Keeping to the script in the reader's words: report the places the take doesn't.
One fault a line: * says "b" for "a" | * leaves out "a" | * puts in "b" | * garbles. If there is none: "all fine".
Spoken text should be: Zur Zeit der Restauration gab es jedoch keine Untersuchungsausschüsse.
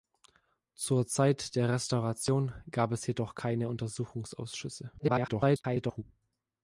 * garbles